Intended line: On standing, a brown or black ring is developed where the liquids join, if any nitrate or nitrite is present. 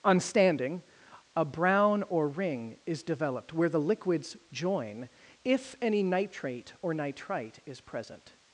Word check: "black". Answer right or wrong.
wrong